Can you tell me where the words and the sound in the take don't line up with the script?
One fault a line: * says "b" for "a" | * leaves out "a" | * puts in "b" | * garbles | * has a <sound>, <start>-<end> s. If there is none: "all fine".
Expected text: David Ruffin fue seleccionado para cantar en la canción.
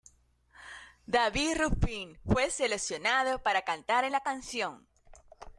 all fine